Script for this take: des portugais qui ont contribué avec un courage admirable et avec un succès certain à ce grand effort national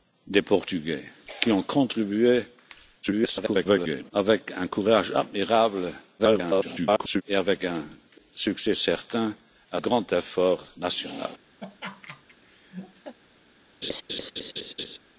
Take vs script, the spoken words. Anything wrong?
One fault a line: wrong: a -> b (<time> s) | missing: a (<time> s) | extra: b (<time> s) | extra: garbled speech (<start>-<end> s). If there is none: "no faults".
extra: garbled speech (3.0-4.1 s)
extra: garbled speech (6.2-7.2 s)
missing: ce (9.8 s)